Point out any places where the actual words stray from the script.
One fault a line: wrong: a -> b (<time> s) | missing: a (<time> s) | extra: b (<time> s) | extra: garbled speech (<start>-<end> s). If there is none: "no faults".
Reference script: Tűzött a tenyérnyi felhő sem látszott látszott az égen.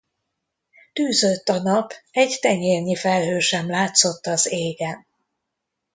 extra: nap egy (1.6 s)
missing: látszott (4.3 s)